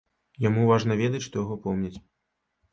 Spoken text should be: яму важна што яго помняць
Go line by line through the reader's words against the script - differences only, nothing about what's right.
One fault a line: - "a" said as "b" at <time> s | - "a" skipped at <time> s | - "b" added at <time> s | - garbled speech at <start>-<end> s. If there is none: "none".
- "ведаць" added at 1.0 s